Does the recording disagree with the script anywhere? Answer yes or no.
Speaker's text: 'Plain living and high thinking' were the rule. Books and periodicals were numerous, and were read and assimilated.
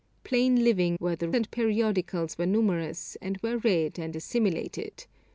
yes